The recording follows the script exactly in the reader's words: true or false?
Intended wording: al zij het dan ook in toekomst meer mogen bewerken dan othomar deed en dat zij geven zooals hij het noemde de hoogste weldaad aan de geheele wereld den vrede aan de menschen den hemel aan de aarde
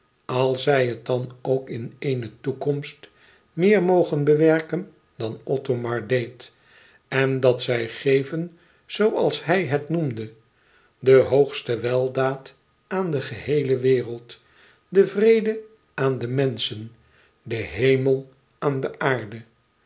false